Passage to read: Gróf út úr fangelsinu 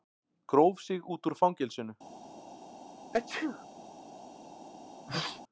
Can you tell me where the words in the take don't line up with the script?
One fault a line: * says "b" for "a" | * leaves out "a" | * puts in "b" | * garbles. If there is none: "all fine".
* puts in "sig"